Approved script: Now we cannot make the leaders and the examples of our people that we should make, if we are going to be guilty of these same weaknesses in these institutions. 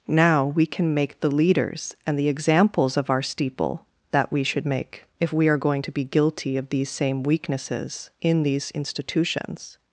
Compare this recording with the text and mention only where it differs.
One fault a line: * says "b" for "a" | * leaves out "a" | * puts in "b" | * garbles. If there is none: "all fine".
* says "can" for "cannot"
* says "steeple" for "people"